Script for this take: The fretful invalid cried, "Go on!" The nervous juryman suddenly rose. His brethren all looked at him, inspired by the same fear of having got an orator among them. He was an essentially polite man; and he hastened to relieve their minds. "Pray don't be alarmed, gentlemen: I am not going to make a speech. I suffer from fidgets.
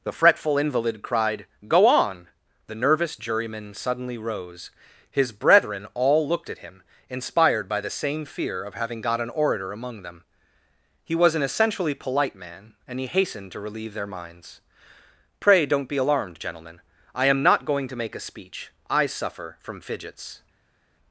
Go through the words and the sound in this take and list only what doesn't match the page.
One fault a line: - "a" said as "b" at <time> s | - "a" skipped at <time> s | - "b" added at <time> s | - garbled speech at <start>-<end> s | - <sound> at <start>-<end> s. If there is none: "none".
none